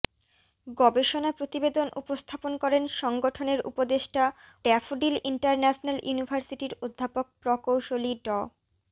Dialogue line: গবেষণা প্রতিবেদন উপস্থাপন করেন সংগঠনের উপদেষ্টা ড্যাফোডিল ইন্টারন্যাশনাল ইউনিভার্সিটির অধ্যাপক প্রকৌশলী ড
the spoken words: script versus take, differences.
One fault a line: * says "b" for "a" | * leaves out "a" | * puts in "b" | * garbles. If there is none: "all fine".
all fine